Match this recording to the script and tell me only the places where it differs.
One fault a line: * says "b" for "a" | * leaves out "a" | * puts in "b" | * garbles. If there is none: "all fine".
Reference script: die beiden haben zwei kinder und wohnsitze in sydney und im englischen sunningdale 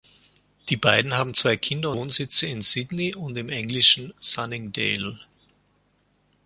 * leaves out "und"